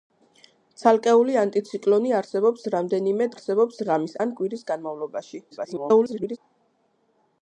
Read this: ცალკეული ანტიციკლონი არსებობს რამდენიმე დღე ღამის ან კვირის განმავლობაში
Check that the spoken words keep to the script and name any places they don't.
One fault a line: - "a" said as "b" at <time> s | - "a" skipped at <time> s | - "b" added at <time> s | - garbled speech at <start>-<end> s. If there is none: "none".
- "დღე" said as "არსებობს" at 3.4 s
- garbled speech at 5.5-6.4 s